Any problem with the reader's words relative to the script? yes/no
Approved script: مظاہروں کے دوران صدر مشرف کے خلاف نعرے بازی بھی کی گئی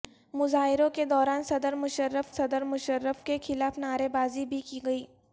yes